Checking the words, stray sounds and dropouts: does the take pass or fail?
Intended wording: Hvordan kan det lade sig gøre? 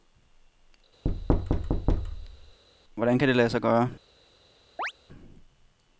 fail